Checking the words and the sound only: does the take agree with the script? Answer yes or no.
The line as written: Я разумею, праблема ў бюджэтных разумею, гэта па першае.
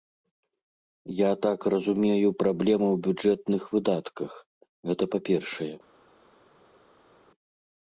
no